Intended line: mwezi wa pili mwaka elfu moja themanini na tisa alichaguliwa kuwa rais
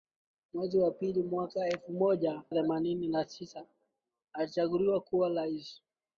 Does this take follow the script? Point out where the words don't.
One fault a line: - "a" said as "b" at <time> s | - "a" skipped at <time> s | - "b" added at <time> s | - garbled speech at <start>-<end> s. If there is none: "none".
none